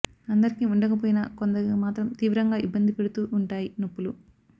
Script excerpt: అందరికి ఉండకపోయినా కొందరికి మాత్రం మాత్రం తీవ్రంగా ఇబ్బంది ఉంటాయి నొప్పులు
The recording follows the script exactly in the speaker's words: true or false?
false